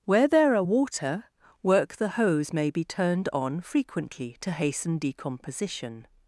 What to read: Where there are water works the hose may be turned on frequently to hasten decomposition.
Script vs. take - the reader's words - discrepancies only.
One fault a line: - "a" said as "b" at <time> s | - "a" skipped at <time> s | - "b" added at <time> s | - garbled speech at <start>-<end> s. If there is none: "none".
- "works" said as "work" at 1.6 s